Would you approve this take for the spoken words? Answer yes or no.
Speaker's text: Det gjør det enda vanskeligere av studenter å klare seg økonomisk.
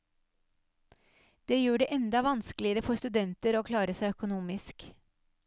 no